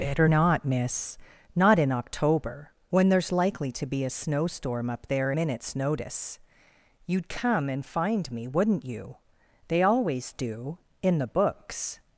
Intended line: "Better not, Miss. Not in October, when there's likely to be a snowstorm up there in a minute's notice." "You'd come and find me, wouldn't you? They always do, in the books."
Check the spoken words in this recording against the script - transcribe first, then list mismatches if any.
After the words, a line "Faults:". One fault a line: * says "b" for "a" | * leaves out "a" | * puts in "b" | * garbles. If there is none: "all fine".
"Better not, Miss. Not in October, when there's likely to be a snowstorm up there minute's notice." "You'd come and find me, wouldn't you? They always do, in the books."
Faults:
* leaves out "in a"